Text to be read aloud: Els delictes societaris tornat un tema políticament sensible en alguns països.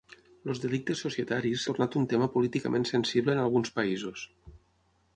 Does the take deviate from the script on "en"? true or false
false